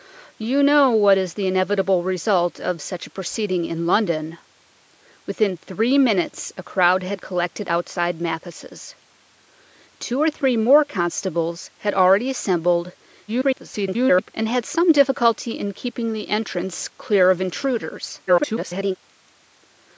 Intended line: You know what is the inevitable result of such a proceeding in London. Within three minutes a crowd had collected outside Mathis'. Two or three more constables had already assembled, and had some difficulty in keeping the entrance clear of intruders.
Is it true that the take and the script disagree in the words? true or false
true